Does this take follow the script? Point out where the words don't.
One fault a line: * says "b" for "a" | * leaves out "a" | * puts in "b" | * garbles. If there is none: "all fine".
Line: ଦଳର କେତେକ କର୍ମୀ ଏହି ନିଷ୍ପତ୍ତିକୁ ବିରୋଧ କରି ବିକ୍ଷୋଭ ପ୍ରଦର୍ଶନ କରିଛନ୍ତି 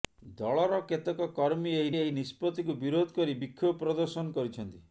* puts in "ଏହି"